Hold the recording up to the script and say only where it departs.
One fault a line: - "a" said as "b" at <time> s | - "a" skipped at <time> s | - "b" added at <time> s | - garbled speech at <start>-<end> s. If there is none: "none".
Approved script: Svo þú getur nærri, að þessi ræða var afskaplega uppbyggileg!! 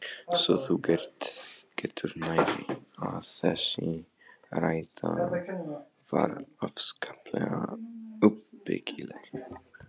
none